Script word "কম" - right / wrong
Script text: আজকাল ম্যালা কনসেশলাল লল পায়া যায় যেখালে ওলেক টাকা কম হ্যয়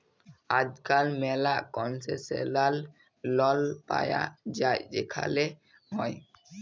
wrong